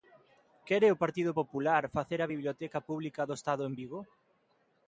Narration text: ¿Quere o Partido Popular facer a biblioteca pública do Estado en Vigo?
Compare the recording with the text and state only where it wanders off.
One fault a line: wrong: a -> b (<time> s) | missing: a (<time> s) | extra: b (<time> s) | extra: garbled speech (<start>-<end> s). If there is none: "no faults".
no faults